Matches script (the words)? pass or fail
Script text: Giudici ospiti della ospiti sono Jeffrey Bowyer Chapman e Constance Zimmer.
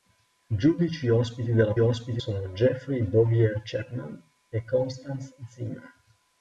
pass